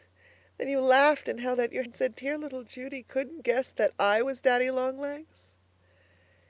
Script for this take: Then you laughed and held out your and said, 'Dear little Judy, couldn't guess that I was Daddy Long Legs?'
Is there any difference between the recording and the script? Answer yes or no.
no